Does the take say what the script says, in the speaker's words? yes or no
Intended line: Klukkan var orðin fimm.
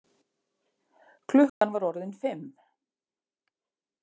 yes